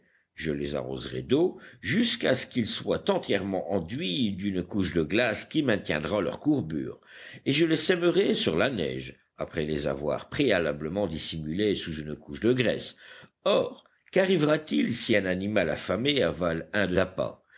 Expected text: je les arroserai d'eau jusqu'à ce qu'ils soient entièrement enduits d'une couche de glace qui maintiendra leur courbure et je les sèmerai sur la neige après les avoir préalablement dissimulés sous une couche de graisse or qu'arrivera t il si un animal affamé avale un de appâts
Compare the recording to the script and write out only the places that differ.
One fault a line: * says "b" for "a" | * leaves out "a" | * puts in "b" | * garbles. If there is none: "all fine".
all fine